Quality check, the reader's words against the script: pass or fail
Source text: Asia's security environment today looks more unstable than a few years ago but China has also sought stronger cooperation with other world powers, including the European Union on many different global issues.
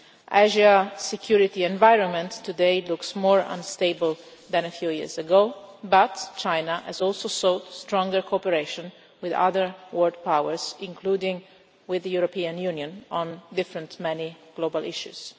fail